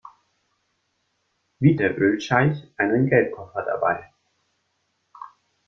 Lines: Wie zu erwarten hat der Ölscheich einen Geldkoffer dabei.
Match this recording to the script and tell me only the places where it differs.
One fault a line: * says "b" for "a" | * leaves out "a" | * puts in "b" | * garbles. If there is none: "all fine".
* leaves out "zu erwarten hat"